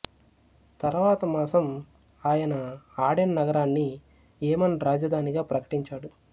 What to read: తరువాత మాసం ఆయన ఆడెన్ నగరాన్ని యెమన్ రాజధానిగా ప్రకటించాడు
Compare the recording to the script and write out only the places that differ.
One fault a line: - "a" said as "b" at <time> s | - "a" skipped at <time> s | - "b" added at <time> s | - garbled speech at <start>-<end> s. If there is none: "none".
none